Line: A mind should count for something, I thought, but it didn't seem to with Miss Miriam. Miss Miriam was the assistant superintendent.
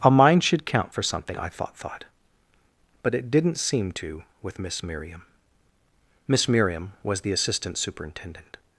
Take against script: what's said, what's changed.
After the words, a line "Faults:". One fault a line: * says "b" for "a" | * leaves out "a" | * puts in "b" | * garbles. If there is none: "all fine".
A mind should count for something, I thought thought, but it didn't seem to with Miss Miriam. Miss Miriam was the assistant superintendent.
Faults:
* puts in "thought"